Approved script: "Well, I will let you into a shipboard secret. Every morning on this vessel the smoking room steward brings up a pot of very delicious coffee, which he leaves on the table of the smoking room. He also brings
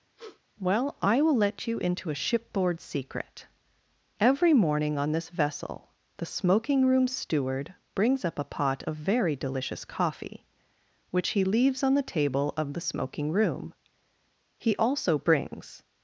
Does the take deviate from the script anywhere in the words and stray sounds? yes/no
yes